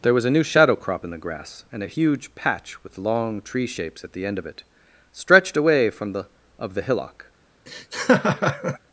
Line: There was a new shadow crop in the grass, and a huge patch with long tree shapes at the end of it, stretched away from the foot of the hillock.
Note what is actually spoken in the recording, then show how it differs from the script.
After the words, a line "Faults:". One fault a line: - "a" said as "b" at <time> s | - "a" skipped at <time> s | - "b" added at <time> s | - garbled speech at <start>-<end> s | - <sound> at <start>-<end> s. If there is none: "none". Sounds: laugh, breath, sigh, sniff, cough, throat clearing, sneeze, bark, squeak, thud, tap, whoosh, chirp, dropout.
There was a new shadow crop in the grass, and a huge patch with long tree shapes at the end of it, stretched away from the of the hillock.
Faults:
- "foot" skipped at 6.3 s
- laugh at 7.7-8.8 s